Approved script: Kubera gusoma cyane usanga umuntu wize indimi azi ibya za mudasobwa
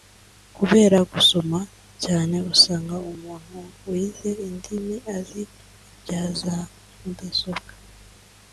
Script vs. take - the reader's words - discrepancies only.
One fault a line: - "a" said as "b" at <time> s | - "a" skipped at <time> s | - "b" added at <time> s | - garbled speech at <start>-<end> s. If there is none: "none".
none